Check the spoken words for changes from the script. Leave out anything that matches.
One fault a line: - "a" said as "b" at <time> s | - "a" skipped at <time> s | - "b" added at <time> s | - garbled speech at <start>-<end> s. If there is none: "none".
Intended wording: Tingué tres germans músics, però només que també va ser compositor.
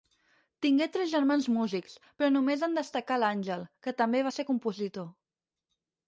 - "en destacà l'Àngel" added at 2.7 s